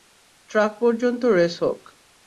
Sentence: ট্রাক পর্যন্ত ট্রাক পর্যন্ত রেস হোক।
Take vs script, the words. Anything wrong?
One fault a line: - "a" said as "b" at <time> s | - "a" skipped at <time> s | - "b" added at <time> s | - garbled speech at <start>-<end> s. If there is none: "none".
- "ট্রাক পর্যন্ত" skipped at 1.2 s